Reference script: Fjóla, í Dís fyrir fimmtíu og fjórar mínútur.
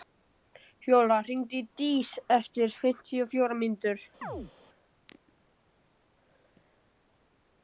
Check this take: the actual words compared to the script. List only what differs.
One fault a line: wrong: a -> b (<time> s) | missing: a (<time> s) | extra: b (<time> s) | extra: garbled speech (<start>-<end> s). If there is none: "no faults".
extra: hringdu (1.3 s)
wrong: fyrir -> eftir (2.4 s)